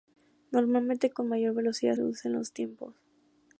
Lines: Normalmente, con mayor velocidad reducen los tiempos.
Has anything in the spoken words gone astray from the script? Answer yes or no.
no